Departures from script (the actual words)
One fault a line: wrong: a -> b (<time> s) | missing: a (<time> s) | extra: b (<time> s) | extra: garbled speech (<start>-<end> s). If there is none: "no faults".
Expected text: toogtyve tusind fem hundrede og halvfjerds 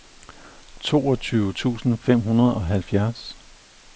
no faults